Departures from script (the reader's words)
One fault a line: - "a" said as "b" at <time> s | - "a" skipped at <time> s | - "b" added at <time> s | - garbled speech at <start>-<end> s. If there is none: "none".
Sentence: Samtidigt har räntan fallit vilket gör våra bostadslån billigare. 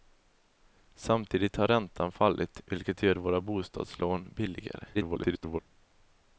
- garbled speech at 4.9-5.6 s